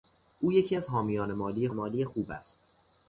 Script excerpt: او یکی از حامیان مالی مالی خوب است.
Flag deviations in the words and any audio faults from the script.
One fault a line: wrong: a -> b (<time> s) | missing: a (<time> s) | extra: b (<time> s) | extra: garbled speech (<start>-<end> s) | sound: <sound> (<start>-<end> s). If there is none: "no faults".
no faults